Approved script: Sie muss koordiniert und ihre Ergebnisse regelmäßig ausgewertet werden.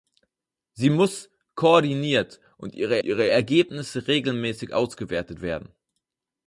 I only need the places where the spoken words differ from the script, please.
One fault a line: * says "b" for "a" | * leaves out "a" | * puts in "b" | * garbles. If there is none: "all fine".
* puts in "ihre"